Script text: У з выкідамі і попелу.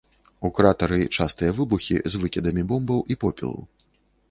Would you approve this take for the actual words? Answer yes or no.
no